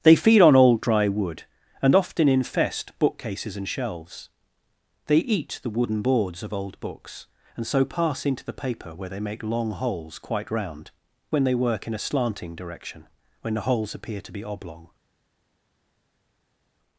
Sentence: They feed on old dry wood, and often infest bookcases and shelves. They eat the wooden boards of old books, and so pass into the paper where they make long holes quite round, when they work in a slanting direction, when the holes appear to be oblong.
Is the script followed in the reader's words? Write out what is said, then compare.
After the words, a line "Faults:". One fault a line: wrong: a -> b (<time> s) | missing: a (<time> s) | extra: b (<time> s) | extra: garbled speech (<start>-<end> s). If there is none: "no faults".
They feed on old dry wood, and often infest bookcases and shelves. They eat the wooden boards of old books, and so pass into the paper where they make long holes quite round, when they work in a slanting direction, when the holes appear to be oblong.
Faults:
no faults